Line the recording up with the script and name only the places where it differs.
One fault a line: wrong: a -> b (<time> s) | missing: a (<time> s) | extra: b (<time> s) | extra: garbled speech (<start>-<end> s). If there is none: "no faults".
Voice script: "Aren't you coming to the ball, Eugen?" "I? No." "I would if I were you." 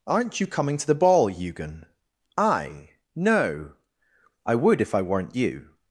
wrong: were -> weren't (5.0 s)